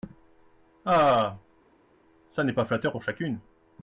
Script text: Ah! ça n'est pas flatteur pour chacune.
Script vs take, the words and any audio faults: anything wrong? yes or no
no